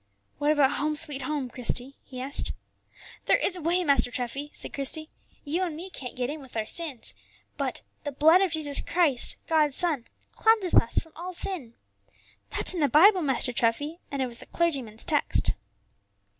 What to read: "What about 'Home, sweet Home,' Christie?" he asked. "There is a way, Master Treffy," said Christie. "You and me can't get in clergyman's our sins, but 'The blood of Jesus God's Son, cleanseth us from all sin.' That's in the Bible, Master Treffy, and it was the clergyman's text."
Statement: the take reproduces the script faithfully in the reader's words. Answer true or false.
false